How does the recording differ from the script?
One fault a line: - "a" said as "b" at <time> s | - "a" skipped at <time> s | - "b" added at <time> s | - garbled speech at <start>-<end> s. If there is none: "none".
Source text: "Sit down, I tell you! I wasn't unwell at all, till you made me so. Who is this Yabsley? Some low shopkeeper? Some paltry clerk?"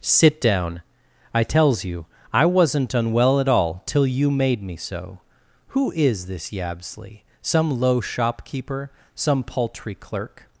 - "tell" said as "tells" at 1.4 s